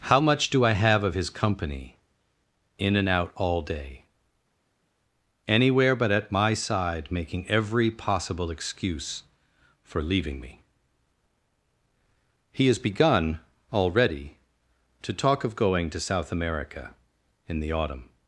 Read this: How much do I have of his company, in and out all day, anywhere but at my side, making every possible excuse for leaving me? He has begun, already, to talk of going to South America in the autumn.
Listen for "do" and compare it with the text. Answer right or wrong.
right